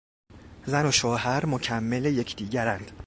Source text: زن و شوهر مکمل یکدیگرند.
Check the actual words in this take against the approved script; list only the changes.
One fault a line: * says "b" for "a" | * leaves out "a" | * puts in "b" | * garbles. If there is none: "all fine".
all fine